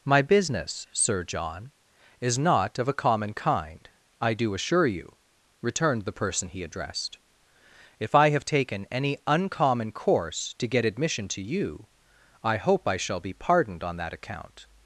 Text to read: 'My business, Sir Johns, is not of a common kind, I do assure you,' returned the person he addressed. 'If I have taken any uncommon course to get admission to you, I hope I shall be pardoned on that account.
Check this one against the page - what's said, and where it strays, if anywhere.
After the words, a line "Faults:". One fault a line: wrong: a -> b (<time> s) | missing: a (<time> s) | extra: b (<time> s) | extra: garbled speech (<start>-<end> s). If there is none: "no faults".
'My business, Sir John, is not of a common kind, I do assure you,' returned the person he addressed. 'If I have taken any uncommon course to get admission to you, I hope I shall be pardoned on that account.
Faults:
wrong: Johns -> John (1.2 s)